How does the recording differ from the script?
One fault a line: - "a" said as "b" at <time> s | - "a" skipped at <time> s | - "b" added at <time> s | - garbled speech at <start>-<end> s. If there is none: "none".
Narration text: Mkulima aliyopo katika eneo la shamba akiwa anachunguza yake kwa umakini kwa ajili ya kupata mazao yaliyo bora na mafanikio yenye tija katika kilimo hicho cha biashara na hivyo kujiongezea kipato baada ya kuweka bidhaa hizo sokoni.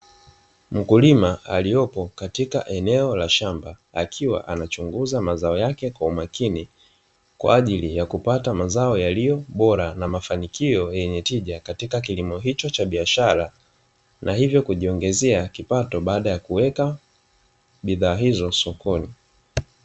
- "mazao" added at 5.2 s